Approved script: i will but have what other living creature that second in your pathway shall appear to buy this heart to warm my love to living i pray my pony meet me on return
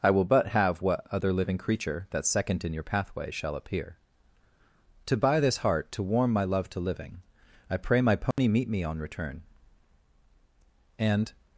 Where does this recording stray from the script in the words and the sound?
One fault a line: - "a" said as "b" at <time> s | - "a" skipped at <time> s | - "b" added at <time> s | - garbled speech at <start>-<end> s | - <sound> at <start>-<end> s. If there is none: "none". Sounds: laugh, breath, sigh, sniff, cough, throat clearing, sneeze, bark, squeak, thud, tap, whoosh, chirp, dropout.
- dropout at 8.3-8.4 s
- "and" added at 11.0 s